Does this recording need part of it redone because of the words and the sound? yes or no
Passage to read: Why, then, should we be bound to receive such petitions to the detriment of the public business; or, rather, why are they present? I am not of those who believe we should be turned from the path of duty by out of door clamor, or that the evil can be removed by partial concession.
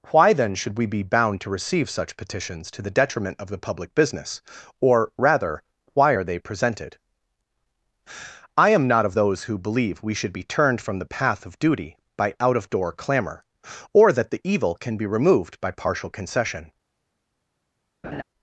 yes